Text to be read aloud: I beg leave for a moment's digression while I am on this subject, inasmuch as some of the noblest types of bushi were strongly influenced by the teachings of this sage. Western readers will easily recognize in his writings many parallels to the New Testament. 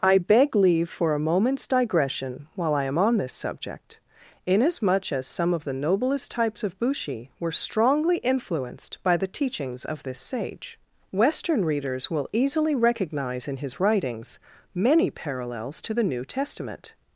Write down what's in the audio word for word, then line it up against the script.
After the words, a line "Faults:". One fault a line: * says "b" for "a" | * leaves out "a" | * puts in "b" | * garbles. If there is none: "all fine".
I beg leave for a moment's digression while I am on this subject, inasmuch as some of the noblest types of bushi were strongly influenced by the teachings of this sage. Western readers will easily recognize in his writings many parallels to the New Testament.
Faults:
all fine